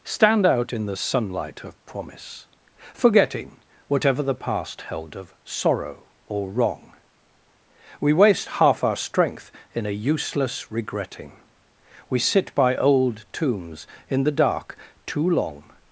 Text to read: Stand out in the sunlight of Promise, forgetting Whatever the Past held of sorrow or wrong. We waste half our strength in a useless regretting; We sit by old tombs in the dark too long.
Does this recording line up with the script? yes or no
yes